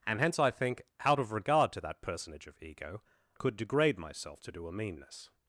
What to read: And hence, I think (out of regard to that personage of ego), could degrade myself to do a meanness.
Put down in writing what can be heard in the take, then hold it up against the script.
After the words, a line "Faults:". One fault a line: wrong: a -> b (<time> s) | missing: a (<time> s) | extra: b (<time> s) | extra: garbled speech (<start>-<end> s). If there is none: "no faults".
And hence, I think (out of regard to that personage of ego), could degrade myself to do a meanness.
Faults:
no faults